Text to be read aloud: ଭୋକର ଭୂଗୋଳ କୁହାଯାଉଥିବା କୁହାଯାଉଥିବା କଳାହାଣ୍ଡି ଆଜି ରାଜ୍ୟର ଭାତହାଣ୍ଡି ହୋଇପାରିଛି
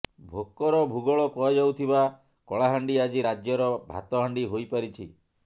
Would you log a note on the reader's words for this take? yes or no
yes